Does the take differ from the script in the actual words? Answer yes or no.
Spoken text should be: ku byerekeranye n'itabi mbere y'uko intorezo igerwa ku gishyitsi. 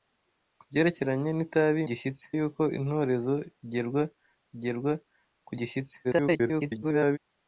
yes